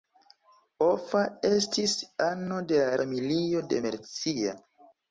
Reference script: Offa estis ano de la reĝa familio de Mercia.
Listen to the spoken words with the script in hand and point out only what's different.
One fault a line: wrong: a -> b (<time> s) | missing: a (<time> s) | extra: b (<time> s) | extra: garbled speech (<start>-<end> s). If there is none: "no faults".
missing: reĝa (3.0 s)